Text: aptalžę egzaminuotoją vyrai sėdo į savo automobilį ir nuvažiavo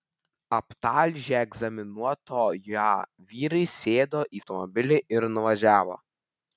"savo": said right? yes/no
no